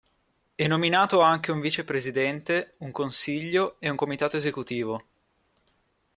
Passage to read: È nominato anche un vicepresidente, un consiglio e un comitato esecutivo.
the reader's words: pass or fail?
pass